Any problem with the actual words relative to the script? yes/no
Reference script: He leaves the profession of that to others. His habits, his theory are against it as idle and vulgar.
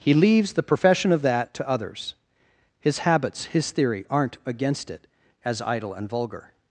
yes